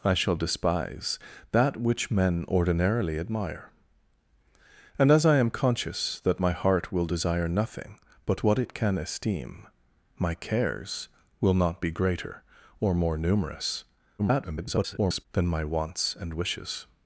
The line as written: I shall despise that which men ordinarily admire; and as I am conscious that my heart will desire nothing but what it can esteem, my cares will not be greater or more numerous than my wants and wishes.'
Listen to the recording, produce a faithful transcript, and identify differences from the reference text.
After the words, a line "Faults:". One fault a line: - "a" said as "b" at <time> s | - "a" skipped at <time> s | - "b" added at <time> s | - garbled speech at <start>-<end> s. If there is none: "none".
I shall despise that which men ordinarily admire; and as I am conscious that my heart will desire nothing but what it can esteem, my cares will not be greater or more numerous [garbled] than my wants and wishes.'
Faults:
- garbled speech at 14.2-15.3 s